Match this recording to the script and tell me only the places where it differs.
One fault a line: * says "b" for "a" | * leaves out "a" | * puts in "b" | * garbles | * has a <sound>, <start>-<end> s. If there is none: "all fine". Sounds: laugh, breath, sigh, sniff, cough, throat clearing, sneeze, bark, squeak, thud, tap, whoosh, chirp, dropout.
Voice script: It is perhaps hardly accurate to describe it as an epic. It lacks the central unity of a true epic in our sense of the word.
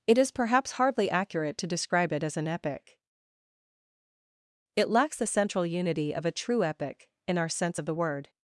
all fine